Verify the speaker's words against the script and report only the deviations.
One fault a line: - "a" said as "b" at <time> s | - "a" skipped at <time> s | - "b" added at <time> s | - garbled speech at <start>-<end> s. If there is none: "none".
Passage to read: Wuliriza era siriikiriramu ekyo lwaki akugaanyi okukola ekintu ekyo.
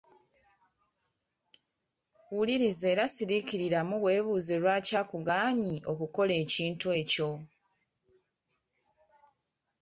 - "ekyo" said as "weebuuze" at 4.0 s